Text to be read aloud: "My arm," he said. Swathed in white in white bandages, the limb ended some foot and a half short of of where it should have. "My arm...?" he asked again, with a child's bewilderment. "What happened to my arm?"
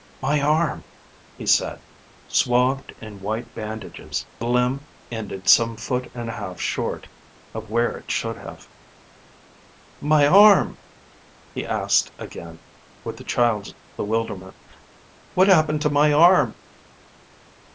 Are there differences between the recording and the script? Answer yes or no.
yes